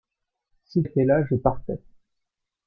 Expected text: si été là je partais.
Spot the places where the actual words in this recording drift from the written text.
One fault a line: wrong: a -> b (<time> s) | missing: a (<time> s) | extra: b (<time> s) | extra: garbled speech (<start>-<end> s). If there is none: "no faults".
no faults